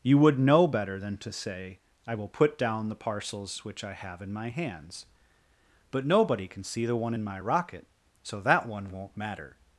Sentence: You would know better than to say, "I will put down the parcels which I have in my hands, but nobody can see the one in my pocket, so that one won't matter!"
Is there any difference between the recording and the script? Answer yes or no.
yes